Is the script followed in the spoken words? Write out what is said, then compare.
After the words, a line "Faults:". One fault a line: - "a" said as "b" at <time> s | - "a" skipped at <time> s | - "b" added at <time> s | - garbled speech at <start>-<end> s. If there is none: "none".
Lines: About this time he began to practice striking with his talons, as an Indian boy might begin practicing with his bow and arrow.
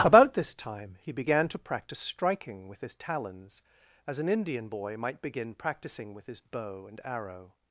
About this time he began to practice striking with his talons, as an Indian boy might begin practicing with his bow and arrow.
Faults:
none